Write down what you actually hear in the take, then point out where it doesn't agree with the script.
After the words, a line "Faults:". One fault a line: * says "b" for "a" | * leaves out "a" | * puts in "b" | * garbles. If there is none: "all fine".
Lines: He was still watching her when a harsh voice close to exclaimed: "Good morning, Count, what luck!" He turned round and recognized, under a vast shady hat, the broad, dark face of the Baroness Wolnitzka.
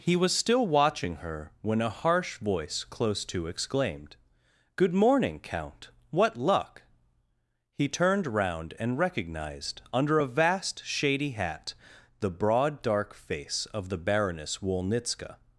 He was still watching her when a harsh voice close to exclaimed: "Good morning, Count, what luck!" He turned round and recognized, under a vast shady hat, the broad, dark face of the Baroness Wolnitzka.
Faults:
all fine